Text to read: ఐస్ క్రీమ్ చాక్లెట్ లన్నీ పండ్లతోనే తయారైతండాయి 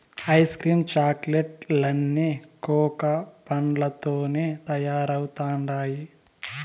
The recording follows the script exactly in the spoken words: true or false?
false